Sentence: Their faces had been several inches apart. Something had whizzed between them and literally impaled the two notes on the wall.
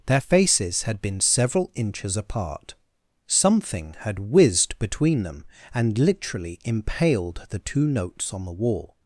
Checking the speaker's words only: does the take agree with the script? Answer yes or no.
yes